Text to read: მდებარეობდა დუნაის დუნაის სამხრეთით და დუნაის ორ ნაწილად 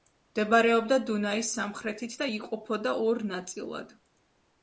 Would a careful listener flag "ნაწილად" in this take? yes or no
no